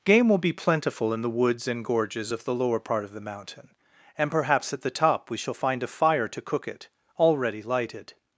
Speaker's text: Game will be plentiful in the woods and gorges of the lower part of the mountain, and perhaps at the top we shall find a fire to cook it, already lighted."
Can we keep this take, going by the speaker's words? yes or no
yes